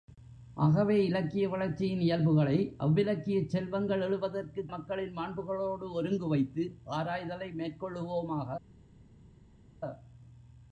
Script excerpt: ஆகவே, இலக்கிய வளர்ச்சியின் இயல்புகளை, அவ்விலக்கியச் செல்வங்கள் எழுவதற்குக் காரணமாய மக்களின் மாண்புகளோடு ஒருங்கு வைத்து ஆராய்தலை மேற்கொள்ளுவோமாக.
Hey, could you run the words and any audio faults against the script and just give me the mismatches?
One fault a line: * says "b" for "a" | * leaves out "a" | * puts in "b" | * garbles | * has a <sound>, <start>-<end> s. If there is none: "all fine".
* leaves out "காரணமாய"